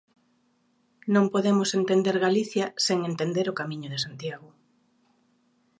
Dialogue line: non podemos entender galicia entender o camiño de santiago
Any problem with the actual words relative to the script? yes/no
yes